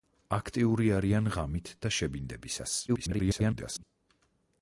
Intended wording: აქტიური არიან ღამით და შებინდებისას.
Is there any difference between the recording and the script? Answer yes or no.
yes